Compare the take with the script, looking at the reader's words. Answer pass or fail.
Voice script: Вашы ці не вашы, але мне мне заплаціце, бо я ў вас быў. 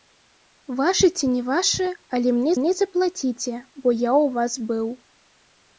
pass